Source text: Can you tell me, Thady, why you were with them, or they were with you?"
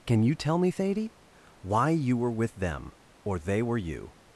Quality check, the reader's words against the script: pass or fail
fail